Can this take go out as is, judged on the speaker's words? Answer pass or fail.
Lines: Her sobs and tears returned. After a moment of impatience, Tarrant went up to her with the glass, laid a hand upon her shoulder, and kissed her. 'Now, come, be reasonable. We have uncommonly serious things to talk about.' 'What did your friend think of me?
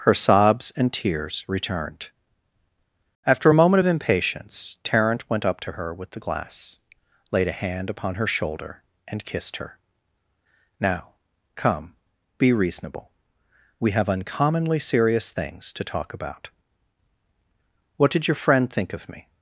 pass